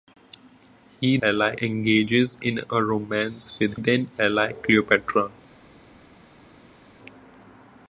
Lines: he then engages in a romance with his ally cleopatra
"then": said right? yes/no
no